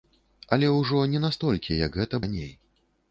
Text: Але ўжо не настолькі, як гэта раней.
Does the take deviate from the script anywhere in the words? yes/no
no